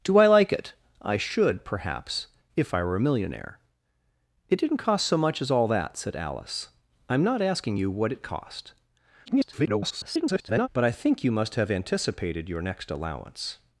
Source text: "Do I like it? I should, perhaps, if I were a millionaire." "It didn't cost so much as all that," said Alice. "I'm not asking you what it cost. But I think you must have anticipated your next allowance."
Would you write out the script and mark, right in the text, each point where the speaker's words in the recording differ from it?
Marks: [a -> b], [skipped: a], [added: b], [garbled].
"Do I like it? I should, perhaps, if I were a millionaire." "It didn't cost so much as all that," said Alice. "I'm not asking you what it cost. [garbled] But I think you must have anticipated your next allowance."